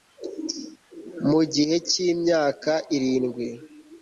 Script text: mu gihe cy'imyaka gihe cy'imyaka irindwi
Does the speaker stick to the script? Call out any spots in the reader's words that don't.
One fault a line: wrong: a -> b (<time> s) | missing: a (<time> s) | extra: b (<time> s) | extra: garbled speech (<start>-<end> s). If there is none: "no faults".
missing: gihe cy'imyaka (2.7 s)